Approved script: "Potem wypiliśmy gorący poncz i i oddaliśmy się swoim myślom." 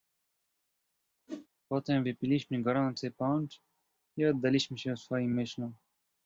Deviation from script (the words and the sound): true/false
true